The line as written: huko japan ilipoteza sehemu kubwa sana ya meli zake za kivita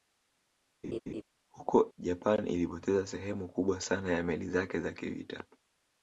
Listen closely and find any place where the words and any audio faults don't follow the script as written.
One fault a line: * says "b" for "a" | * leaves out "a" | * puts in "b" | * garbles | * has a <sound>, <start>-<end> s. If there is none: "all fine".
* has a laugh, 0.8-1.2 s